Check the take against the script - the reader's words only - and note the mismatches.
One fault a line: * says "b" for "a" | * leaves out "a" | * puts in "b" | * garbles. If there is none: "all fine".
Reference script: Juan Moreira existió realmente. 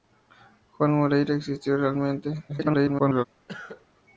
* garbles